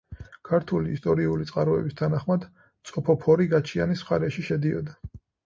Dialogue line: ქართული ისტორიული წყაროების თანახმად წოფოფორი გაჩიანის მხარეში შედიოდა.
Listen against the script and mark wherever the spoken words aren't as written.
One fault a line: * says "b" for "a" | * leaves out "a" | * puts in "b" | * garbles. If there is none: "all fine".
all fine